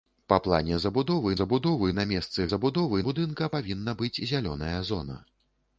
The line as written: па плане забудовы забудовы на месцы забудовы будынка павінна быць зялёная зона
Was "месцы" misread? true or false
false